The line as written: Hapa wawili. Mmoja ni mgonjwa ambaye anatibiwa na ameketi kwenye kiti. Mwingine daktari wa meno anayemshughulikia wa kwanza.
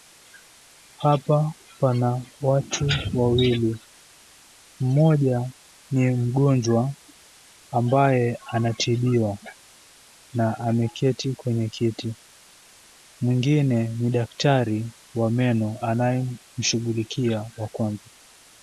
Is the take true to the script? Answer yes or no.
no